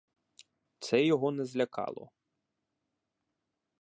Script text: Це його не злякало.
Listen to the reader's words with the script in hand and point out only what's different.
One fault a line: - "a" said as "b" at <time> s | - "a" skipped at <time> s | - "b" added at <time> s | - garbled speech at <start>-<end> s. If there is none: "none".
none